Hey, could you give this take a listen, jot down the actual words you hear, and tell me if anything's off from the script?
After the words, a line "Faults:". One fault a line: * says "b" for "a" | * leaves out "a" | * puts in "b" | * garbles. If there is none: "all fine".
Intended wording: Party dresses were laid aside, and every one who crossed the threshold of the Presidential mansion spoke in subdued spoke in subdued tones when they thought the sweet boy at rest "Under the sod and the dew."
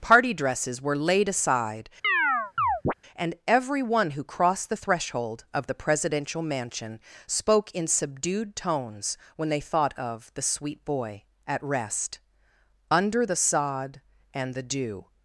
Party dresses were laid aside, and every one who crossed the threshold of the Presidential mansion spoke in subdued tones when they thought of the sweet boy at rest "Under the sod and the dew."
Faults:
* leaves out "spoke in subdued"
* puts in "of"